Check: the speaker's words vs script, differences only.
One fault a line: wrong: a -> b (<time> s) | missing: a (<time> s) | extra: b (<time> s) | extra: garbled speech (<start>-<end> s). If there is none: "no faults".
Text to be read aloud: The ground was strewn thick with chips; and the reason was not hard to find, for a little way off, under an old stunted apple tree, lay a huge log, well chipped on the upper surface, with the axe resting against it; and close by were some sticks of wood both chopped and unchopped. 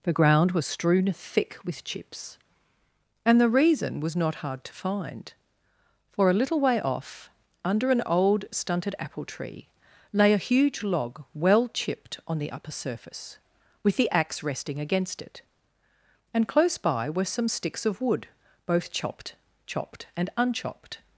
extra: chopped (19.6 s)